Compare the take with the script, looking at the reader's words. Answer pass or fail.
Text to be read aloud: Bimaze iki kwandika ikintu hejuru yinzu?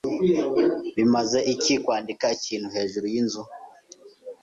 pass